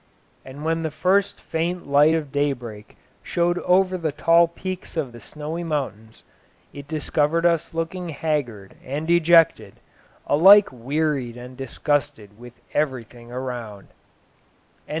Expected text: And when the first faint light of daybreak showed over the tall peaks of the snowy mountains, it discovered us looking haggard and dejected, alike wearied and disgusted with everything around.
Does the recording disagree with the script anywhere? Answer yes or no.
no